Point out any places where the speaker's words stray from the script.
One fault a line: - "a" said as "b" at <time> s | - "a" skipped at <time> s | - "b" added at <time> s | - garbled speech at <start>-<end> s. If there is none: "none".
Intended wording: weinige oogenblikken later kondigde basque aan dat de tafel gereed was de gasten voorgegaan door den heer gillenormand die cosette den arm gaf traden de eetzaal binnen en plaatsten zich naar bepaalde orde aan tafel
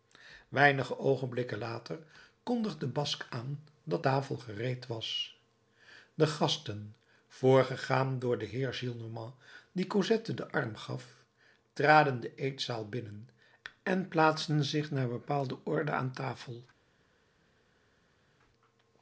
- "de" skipped at 4.0 s